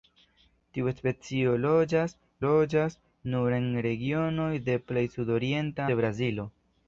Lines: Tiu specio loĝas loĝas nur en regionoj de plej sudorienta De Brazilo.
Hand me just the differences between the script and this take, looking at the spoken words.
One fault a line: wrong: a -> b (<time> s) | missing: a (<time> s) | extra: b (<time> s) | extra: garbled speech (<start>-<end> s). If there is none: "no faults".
no faults